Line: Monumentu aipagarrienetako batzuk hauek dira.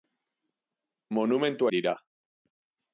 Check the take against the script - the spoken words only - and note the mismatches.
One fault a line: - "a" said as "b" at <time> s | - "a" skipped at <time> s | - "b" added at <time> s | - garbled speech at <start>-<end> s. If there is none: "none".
- "aipagarrienetako batzuk hauek" skipped at 1.7 s